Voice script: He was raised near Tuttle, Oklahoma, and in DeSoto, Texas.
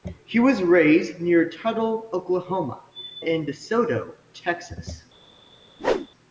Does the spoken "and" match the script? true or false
false